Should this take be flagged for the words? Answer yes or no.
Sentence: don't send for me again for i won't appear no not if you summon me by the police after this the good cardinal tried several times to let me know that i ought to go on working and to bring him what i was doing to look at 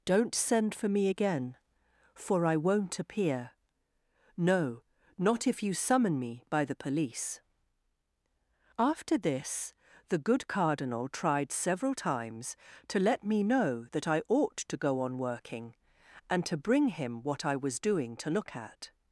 no